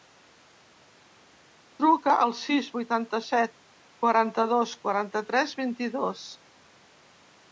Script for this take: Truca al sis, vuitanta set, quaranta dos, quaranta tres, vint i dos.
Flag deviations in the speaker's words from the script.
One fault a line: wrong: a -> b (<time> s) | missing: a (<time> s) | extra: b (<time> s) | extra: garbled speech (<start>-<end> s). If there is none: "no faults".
no faults